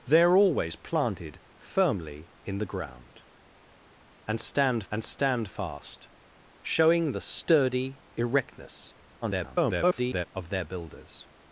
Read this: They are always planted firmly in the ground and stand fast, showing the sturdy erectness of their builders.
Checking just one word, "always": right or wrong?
right